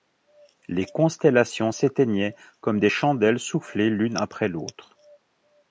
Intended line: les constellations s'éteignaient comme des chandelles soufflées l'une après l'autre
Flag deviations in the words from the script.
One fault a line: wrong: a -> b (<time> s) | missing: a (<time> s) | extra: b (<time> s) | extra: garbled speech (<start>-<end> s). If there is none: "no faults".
no faults